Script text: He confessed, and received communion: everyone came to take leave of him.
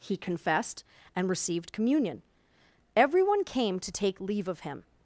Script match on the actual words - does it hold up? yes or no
yes